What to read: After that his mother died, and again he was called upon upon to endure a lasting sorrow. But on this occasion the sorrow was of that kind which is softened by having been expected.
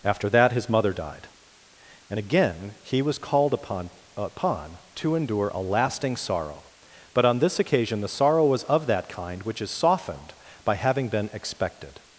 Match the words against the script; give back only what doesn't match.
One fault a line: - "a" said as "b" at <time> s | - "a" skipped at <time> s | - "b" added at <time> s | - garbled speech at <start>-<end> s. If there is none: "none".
none